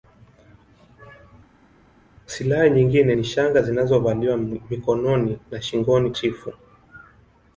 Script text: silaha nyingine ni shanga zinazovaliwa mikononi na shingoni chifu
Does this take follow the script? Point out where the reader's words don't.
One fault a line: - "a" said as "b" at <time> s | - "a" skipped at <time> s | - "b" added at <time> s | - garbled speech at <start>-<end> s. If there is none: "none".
none